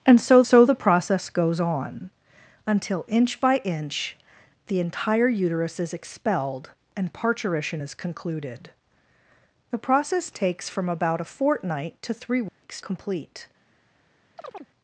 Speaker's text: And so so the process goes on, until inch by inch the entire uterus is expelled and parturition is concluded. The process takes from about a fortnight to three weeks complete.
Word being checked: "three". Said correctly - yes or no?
yes